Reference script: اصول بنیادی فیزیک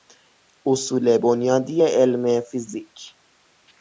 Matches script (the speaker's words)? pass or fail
fail